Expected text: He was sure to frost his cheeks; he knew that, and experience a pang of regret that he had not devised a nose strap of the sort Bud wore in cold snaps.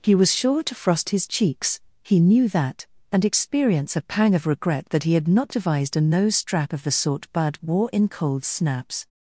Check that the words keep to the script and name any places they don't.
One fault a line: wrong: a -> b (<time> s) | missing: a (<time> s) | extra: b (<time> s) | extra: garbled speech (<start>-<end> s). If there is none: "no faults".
no faults